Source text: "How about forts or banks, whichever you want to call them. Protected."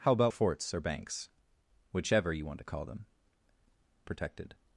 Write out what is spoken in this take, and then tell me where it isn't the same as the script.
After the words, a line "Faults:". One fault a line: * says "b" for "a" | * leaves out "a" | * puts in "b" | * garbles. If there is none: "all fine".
"How about forts or banks, whichever you want to call them. Protected."
Faults:
all fine